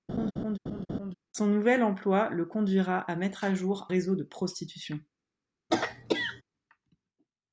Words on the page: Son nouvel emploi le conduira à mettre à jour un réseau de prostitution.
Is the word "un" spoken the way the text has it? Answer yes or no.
no